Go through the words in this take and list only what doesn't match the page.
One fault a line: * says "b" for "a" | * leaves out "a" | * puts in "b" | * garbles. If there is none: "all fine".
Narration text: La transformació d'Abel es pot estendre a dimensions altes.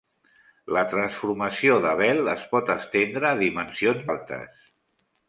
all fine